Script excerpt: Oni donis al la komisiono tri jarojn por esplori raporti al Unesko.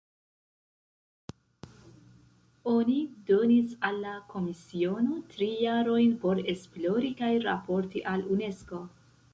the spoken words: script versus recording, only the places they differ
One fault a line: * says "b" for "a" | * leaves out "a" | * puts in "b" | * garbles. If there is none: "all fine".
* puts in "kaj"